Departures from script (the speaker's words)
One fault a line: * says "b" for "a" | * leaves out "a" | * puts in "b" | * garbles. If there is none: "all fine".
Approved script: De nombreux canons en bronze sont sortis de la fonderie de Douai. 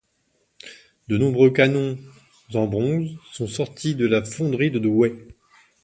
all fine